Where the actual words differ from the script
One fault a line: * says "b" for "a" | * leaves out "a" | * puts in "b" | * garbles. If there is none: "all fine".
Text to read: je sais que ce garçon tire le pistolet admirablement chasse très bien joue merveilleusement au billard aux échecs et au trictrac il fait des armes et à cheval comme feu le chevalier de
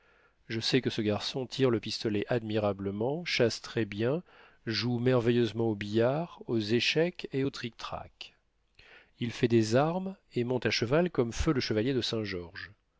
* puts in "monte"